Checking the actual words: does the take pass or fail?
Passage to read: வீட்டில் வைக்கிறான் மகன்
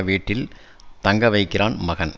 fail